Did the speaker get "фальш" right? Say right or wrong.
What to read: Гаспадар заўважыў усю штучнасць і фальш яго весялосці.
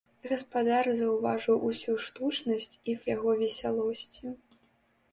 wrong